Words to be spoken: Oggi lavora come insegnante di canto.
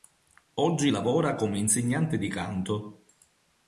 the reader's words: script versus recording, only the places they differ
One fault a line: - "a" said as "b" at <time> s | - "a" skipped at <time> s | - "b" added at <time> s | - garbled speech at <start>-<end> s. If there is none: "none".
none